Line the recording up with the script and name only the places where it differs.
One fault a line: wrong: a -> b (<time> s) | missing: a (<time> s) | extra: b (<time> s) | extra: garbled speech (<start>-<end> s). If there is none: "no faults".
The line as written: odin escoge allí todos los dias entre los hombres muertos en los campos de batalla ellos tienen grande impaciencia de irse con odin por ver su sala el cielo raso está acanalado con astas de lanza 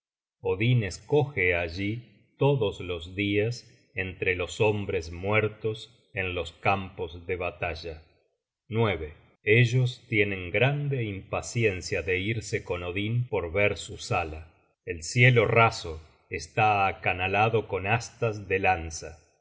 no faults